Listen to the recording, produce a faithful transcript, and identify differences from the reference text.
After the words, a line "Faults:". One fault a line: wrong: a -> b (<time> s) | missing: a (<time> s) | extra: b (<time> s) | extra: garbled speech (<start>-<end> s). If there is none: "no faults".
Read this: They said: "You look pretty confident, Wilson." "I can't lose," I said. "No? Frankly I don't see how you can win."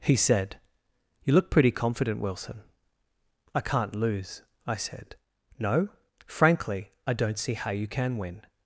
He said: "You look pretty confident, Wilson." "I can't lose," I said. "No? Frankly I don't see how you can win."
Faults:
wrong: They -> He (0.0 s)